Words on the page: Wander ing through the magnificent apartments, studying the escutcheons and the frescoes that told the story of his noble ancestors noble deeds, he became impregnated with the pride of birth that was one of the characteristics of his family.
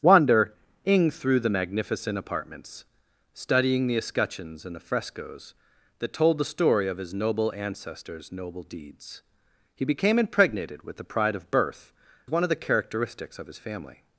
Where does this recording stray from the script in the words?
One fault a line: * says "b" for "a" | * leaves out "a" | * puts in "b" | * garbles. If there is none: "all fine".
* leaves out "that was"